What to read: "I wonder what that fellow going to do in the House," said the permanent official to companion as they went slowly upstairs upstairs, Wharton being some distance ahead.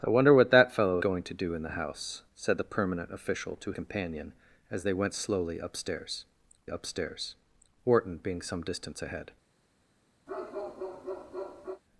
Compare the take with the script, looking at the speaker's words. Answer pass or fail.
pass